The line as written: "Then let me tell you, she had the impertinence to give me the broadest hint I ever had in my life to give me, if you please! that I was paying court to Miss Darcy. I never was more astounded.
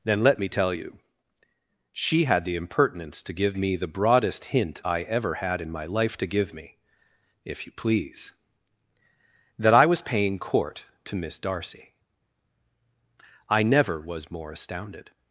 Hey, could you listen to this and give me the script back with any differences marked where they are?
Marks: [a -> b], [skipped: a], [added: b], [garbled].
"Then let me tell you, she had the impertinence to give me the broadest hint I ever had in my life to give me, if you please! that I was paying court to Miss Darcy. I never was more astounded.